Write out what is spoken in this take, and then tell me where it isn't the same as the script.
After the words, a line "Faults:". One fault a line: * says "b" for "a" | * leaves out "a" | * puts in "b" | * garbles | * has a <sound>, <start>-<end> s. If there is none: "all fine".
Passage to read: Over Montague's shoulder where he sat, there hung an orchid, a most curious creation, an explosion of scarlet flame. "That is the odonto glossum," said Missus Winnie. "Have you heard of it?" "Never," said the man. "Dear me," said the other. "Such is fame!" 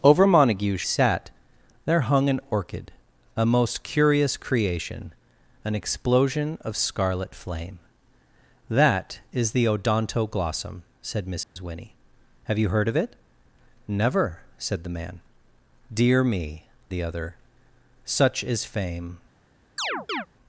Over Montague's sat, there hung an orchid, a most curious creation, an explosion of scarlet flame. "That is the odonto glossum," said Missus Winnie. "Have you heard of it?" "Never," said the man. "Dear me," the other. "Such is fame!"
Faults:
* leaves out "shoulder where he"
* has a dropout, 11.4-11.6 s
* leaves out "said"
* has a chirp, 19.8-20.3 s